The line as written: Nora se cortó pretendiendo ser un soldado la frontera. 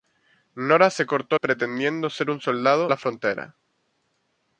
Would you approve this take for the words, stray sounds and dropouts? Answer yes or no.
yes